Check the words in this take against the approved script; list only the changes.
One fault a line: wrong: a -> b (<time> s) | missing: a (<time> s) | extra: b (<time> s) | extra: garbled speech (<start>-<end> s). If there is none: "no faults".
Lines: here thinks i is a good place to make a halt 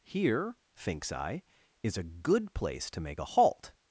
no faults